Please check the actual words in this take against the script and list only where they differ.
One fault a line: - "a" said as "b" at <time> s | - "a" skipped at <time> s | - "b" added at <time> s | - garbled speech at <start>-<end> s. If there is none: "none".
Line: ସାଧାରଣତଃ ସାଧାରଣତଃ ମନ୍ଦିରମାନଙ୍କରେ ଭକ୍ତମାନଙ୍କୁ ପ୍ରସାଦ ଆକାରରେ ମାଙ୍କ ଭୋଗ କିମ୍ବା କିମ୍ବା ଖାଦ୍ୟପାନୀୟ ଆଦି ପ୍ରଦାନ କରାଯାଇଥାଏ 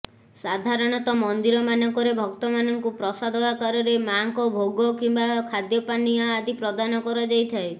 - "ସାଧାରଣତଃ" skipped at 1.2 s
- "କିମ୍ବା" skipped at 5.3 s